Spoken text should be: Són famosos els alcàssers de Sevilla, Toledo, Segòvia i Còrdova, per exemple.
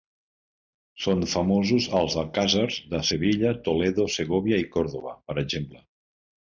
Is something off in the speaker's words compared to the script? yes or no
no